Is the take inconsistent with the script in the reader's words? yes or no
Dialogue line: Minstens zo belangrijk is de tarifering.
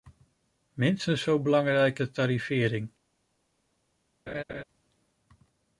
yes